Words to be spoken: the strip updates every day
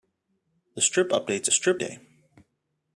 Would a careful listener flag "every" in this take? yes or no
yes